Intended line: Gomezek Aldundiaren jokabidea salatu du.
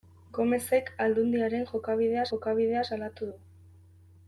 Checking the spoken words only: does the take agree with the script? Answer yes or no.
no